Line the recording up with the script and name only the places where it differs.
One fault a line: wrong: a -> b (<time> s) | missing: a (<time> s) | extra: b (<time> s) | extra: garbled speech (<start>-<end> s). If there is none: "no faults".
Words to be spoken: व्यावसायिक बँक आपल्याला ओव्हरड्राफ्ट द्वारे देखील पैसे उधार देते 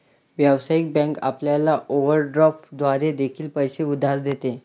no faults